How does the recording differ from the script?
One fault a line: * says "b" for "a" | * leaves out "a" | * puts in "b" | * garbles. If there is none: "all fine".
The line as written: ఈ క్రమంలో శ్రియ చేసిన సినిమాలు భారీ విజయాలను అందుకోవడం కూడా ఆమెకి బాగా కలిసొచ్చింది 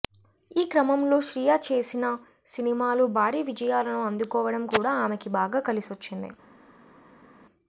all fine